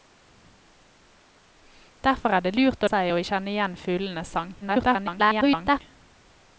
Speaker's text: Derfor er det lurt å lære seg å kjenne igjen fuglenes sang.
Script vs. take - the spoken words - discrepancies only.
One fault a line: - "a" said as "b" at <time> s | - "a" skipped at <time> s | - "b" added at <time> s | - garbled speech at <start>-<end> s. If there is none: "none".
- "lære" skipped at 2.9 s
- garbled speech at 4.6-5.8 s